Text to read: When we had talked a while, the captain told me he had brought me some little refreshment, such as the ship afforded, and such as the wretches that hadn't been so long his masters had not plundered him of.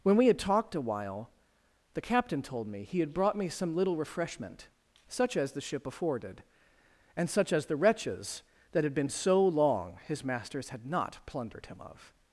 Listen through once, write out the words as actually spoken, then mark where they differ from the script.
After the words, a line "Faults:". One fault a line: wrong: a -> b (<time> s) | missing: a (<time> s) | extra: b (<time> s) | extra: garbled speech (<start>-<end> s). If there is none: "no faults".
When we had talked a while, the captain told me he had brought me some little refreshment, such as the ship afforded, and such as the wretches that had been so long his masters had not plundered him of.
Faults:
wrong: hadn't -> had (8.8 s)